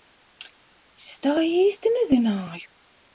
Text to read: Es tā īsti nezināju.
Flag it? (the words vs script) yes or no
no